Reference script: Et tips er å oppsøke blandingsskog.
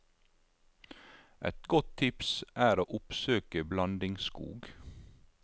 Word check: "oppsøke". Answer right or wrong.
right